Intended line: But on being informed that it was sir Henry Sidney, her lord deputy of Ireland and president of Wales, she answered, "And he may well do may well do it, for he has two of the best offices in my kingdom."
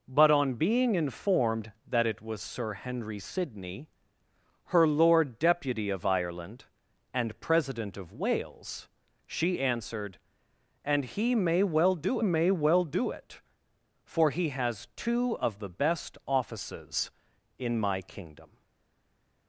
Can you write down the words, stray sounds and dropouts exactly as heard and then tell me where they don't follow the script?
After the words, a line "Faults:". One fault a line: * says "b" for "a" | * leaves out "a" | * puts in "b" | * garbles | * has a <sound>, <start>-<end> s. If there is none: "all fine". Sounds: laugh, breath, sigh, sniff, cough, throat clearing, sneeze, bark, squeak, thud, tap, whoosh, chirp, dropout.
But on being informed that it was sir Henry Sidney, her lord deputy of Ireland and president of Wales, she answered, "And he may well do may well do it, for he has two of the best offices in my kingdom."
Faults:
all fine